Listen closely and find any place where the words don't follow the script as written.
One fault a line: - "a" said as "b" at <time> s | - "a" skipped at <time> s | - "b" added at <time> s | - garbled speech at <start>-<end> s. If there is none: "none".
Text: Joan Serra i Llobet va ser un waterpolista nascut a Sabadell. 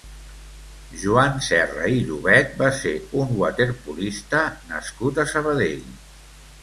none